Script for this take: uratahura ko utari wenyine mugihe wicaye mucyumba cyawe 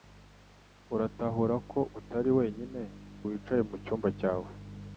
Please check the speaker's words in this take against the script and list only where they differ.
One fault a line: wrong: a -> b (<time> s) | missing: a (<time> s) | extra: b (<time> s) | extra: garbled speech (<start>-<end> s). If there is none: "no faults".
missing: mugihe (2.8 s)